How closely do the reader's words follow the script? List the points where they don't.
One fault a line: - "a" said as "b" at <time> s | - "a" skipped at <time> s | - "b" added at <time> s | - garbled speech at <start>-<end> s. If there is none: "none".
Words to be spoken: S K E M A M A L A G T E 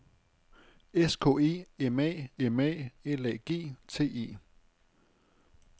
none